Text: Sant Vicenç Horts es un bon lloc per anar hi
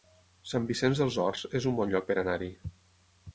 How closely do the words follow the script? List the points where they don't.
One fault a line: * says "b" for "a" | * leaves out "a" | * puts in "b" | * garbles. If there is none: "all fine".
* puts in "dels"